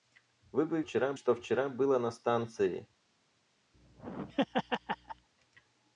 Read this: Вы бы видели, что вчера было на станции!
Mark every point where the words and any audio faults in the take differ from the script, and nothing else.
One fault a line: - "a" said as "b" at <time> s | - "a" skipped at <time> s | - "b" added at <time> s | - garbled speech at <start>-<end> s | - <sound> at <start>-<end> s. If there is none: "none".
- "видели" said as "вчера" at 0.8 s
- laugh at 3.7-5.3 s